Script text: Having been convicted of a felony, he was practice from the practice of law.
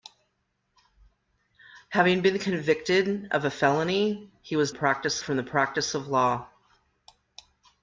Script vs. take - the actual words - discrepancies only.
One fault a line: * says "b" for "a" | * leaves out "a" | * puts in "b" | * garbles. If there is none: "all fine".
all fine